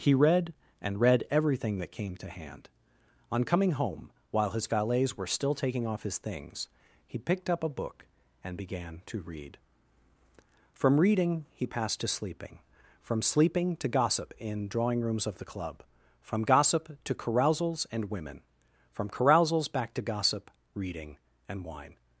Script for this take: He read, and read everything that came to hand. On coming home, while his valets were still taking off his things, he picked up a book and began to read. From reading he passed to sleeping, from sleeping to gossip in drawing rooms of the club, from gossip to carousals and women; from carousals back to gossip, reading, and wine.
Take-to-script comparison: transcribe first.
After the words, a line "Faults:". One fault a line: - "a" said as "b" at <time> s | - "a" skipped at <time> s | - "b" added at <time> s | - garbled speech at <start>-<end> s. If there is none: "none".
He read, and read everything that came to hand. On coming home, while his valets were still taking off his things, he picked up a book and began to read. From reading he passed to sleeping, from sleeping to gossip in drawing rooms of the club, from gossip to carousals and women; from carousals back to gossip, reading, and wine.
Faults:
none